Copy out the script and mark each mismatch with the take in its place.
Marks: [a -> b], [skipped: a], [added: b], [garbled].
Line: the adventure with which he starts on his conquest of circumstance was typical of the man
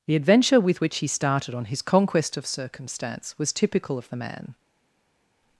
the adventure with which he [starts -> started] on his conquest of circumstance was typical of the man